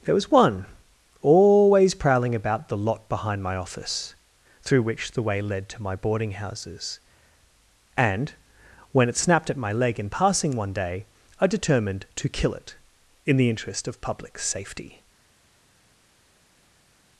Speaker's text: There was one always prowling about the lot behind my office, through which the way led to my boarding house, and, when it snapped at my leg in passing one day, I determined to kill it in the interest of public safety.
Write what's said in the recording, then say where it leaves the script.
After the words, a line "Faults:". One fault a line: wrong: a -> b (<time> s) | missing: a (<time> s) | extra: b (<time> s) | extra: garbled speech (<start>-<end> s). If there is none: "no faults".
There was one always prowling about the lot behind my office, through which the way led to my boarding houses, and, when it snapped at my leg in passing one day, I determined to kill it in the interest of public safety.
Faults:
wrong: house -> houses (6.3 s)